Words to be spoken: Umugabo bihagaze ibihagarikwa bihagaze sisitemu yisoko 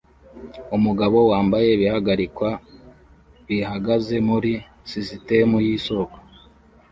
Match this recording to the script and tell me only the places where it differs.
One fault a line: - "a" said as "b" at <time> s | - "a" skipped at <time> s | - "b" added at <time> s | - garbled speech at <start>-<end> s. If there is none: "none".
- "bihagaze" said as "wambaye" at 1.3 s
- "muri" added at 4.3 s